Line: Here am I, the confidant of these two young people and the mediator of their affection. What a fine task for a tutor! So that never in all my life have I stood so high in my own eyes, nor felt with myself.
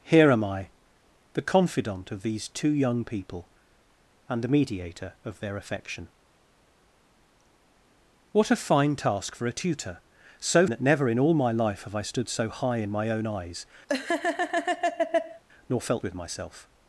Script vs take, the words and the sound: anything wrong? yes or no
yes